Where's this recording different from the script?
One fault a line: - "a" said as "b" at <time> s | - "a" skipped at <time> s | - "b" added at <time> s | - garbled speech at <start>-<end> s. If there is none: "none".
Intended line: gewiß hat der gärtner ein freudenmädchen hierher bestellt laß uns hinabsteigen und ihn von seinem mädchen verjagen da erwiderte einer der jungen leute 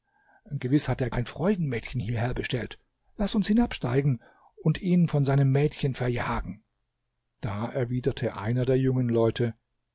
- "gärtner" skipped at 1.1 s